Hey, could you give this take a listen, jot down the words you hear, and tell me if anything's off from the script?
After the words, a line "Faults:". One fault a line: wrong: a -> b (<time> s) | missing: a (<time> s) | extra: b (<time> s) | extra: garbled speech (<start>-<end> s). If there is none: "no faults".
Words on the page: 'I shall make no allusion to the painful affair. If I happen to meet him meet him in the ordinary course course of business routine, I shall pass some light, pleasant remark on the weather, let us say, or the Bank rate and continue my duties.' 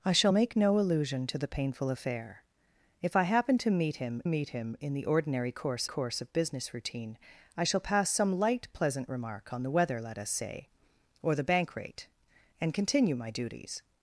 'I shall make no allusion to the painful affair. If I happen to meet him meet him in the ordinary course course of business routine, I shall pass some light, pleasant remark on the weather, let us say, or the Bank rate and continue my duties.'
Faults:
no faults